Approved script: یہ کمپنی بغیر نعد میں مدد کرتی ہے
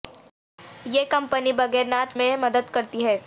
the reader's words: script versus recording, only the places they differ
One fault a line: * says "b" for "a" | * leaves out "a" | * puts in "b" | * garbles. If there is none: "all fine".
all fine